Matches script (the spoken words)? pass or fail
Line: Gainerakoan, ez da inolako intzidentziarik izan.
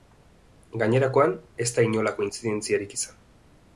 pass